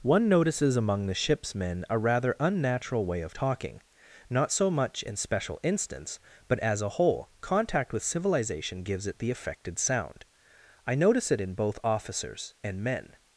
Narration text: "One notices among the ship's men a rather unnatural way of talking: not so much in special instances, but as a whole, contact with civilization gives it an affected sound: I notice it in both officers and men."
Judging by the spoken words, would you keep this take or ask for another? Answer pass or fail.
fail